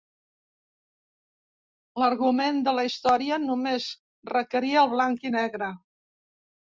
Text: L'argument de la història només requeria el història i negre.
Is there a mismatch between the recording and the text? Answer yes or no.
yes